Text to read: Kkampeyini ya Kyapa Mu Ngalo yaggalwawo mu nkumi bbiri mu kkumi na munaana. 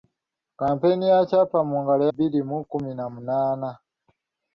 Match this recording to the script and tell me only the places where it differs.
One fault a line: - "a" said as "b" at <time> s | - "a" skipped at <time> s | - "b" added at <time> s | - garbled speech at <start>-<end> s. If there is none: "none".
- "yaggalwawo mu nkumi" skipped at 2.0 s